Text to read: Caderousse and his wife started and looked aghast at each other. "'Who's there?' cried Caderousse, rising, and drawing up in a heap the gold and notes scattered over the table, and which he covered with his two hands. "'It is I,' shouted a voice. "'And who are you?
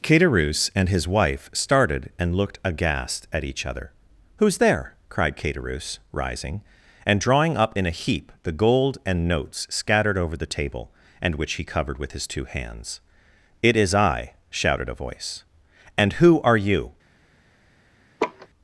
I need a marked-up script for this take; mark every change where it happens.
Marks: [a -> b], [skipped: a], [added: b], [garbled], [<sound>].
Caderousse and his wife started and looked aghast at each other. "'Who's there?' cried Caderousse, rising, and drawing up in a heap the gold and notes scattered over the table, and which he covered with his two hands. "'It is I,' shouted a voice. "'And who are you? [laugh]